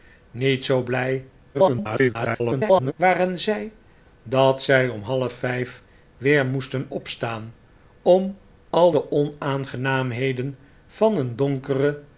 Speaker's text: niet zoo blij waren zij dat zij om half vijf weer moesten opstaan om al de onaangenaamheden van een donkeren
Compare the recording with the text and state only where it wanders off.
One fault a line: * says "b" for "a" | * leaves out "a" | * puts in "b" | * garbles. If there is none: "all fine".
* garbles